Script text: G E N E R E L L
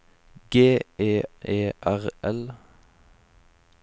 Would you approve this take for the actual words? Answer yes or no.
no